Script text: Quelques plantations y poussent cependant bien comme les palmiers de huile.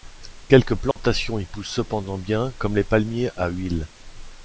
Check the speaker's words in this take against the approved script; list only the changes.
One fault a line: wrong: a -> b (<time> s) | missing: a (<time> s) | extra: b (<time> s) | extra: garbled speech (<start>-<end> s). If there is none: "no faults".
wrong: de -> à (3.4 s)